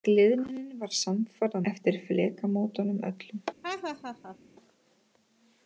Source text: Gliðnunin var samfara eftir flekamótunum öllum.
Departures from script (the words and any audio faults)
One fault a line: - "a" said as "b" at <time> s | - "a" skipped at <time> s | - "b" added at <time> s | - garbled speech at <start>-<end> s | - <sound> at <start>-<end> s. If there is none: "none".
- laugh at 3.6-4.4 s